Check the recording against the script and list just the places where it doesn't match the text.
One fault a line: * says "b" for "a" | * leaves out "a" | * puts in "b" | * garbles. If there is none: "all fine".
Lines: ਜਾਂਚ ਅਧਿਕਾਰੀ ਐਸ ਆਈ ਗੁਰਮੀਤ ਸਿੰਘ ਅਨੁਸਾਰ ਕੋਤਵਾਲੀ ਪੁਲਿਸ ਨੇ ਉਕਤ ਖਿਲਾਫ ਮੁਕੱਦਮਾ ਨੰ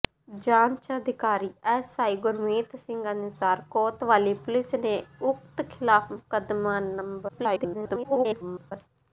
* garbles